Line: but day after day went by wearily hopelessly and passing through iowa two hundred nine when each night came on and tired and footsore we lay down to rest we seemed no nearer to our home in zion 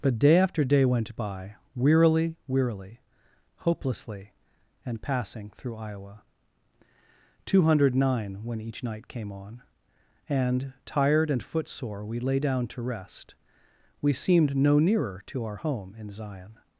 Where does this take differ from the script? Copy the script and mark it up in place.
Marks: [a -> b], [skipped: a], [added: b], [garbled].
but day after day went by wearily [added: wearily] hopelessly and passing through iowa two hundred nine when each night came on and tired and footsore we lay down to rest we seemed no nearer to our home in zion